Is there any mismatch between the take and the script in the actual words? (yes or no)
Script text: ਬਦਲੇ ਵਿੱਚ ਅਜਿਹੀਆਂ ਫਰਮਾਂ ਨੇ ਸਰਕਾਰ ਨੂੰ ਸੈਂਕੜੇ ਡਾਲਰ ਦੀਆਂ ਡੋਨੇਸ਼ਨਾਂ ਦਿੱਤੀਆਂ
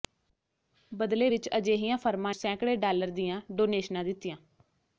yes